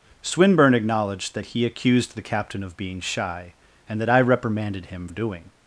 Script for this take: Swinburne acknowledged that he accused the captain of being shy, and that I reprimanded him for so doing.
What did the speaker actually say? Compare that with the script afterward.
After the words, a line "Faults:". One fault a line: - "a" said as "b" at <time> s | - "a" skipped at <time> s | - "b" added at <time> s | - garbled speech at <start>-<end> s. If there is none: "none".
Swinburne acknowledged that he accused the captain of being shy, and that I reprimanded him doing.
Faults:
- "for so" skipped at 5.1 s